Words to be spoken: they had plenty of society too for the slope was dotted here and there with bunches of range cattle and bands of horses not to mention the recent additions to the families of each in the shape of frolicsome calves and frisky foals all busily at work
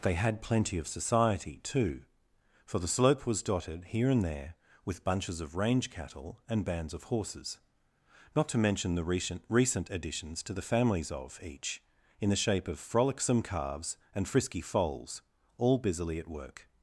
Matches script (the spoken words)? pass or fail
fail